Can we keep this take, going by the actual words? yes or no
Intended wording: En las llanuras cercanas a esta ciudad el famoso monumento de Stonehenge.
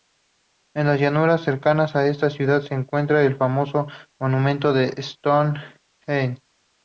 no